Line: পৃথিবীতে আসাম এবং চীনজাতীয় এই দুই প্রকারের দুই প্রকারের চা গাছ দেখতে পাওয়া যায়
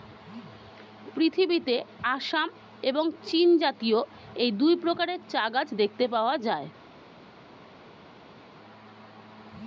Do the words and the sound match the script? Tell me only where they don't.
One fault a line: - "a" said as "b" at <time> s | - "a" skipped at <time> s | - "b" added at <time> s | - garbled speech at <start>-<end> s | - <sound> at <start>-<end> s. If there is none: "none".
- "দুই প্রকারের" skipped at 5.2 s